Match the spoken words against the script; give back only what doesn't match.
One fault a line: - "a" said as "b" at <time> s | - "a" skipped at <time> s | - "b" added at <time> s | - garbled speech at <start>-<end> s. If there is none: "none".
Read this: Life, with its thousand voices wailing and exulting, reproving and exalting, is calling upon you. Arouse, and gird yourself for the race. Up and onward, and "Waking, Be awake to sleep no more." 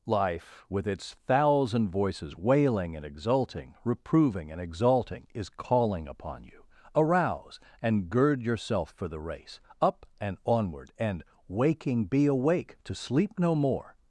none